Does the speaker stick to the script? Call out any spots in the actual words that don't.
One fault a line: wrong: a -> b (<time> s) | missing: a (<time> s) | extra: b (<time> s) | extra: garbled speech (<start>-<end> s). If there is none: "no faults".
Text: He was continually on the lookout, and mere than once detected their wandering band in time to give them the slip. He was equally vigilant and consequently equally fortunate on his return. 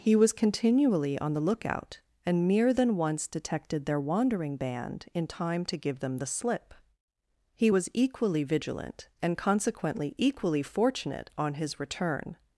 no faults